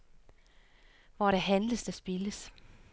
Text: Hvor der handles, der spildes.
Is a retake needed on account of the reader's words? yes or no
no